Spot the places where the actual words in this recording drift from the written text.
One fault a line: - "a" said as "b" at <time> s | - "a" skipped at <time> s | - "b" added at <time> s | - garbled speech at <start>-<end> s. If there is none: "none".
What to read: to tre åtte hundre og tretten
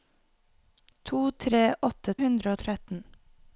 none